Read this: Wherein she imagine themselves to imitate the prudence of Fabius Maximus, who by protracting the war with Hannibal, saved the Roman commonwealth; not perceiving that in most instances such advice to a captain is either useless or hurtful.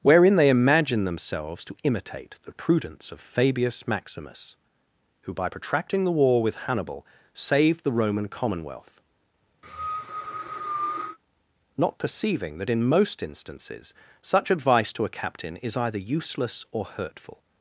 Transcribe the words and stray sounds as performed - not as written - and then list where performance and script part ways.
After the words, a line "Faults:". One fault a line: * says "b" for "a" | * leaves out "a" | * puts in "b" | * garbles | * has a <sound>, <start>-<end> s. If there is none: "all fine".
Wherein they imagine themselves to imitate the prudence of Fabius Maximus, who by protracting the war with Hannibal, saved the Roman commonwealth; not perceiving that in most instances such advice to a captain is either useless or hurtful.
Faults:
* says "they" for "she"
* has a cough, 9.6-11.2 s